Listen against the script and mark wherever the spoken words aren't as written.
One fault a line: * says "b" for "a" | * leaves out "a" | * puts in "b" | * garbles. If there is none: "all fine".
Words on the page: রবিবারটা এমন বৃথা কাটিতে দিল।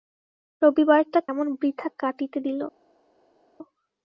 all fine